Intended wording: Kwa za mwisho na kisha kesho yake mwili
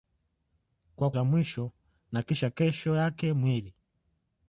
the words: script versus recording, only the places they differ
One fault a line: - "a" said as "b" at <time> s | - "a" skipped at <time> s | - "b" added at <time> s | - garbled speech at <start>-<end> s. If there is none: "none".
none